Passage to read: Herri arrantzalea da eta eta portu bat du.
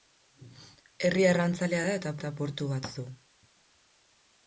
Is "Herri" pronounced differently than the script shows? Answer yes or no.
no